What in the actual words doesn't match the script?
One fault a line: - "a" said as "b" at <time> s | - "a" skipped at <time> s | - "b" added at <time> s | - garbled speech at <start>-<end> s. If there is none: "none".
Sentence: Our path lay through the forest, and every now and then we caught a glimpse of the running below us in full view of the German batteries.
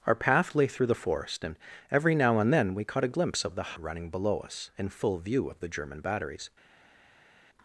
none